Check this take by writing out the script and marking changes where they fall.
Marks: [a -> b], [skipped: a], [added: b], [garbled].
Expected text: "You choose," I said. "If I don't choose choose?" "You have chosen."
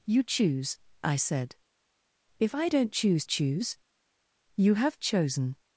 "You choose," I said. "If I don't choose choose?" "You have chosen."